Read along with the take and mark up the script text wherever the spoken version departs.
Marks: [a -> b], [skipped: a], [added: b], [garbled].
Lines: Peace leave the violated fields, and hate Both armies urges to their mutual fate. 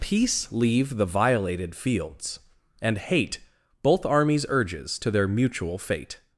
Peace leave the violated fields, and hate Both armies urges to their mutual fate.